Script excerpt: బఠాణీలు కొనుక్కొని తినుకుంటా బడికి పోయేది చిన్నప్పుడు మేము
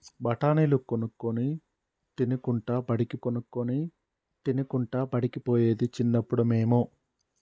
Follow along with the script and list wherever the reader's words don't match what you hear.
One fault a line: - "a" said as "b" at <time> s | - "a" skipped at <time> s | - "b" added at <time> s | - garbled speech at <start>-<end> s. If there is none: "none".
- "కొనుక్కొని తినుకుంటా బడికి" added at 3.2 s